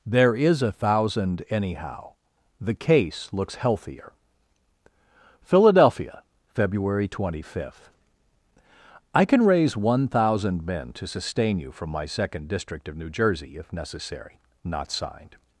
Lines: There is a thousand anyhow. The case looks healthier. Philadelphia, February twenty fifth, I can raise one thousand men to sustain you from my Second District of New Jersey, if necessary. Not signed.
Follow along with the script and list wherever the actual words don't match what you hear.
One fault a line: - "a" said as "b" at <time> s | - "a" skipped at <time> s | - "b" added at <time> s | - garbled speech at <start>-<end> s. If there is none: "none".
none